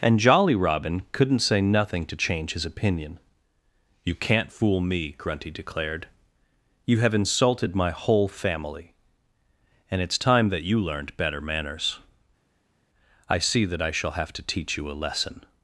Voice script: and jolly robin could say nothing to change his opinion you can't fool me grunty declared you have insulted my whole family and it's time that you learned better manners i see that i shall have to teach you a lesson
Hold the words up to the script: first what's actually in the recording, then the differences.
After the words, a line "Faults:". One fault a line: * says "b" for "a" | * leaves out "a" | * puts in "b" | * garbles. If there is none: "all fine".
and jolly robin couldn't say nothing to change his opinion you can't fool me grunty declared you have insulted my whole family and it's time that you learned better manners i see that i shall have to teach you a lesson
Faults:
* says "couldn't" for "could"